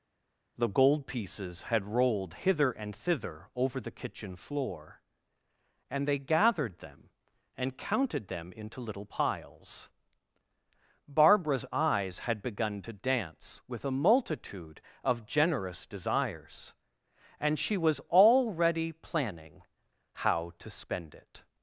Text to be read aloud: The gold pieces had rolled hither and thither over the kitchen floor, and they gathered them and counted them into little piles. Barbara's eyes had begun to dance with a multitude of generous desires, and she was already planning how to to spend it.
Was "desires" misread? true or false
false